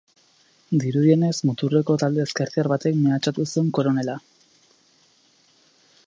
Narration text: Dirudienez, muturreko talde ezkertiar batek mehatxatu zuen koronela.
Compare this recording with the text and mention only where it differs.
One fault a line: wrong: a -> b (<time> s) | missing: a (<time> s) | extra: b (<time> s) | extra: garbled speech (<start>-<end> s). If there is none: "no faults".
no faults